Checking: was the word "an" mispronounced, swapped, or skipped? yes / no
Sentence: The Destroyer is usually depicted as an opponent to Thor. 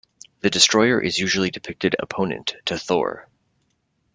yes